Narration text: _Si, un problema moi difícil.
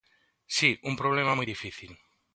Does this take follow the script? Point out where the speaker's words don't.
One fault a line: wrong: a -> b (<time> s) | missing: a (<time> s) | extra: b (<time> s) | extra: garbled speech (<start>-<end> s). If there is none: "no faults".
no faults